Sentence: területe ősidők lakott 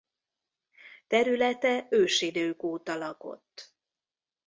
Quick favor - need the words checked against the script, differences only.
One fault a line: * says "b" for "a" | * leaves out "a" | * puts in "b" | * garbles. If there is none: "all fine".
* puts in "óta"